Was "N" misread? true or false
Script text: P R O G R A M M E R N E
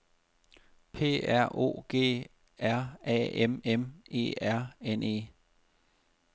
false